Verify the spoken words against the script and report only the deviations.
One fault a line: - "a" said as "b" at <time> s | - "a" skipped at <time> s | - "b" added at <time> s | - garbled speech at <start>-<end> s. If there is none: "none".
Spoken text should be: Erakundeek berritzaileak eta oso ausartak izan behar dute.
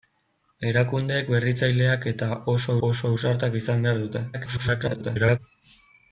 - "oso" added at 2.9 s
- garbled speech at 4.3-5.4 s